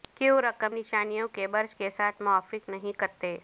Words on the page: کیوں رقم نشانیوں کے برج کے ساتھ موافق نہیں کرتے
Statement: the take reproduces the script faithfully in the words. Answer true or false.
true